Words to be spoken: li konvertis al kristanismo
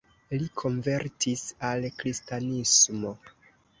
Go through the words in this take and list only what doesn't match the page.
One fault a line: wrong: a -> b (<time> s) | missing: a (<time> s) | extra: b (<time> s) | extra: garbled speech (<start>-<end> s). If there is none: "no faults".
no faults